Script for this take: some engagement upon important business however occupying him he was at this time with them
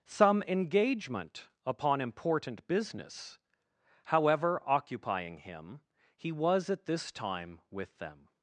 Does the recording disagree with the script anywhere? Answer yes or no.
no